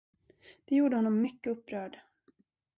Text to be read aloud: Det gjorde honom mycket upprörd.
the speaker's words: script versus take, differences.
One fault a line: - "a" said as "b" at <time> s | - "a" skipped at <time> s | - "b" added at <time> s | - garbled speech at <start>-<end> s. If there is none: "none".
none